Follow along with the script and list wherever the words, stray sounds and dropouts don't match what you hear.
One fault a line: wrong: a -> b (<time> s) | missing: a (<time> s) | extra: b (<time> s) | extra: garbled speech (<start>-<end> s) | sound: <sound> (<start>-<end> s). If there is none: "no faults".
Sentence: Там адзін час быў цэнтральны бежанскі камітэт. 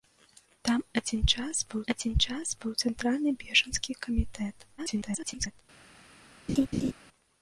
extra: адзін час быў (1.9 s)
extra: garbled speech (4.8-5.6 s)
sound: laugh (6.5-6.9 s)